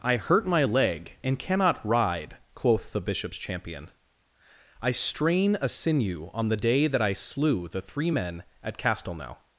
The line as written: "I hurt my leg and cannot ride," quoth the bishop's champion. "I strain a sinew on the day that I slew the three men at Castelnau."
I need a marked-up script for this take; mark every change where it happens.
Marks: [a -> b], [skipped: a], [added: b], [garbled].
"I hurt my leg and cannot ride," quoth the bishop's champion. "I strain a sinew on the day that I slew the three men at Castelnau."